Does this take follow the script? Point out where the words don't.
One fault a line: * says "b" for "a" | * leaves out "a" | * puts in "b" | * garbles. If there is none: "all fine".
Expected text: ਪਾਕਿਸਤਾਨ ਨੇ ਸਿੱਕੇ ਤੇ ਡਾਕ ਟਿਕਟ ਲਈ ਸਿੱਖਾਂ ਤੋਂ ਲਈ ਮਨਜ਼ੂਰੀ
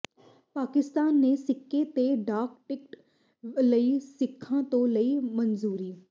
all fine